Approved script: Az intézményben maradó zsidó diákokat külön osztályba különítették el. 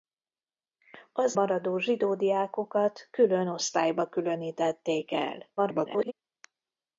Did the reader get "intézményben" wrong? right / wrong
wrong